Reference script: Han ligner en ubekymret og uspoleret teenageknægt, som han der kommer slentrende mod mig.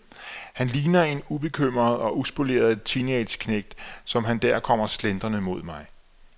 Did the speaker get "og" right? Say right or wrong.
right